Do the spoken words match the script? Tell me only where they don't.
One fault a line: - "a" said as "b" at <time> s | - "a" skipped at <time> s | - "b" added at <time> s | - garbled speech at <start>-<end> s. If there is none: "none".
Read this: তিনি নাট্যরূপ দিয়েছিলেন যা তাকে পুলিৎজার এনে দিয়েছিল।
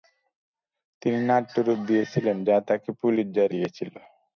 - "এনে" skipped at 3.5 s